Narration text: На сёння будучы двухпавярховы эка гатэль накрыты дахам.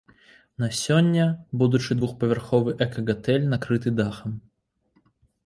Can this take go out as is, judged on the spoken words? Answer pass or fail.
pass